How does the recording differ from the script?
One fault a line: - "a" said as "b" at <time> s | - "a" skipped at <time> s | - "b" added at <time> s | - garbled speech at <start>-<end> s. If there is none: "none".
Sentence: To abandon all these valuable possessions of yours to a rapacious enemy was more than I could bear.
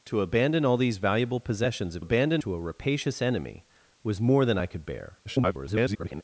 - "yours" said as "abandon" at 2.0 s
- garbled speech at 5.2-6.2 s